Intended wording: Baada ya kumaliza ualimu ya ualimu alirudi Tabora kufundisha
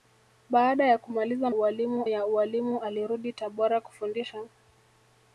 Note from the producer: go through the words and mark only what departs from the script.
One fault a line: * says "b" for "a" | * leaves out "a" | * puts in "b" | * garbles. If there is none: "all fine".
all fine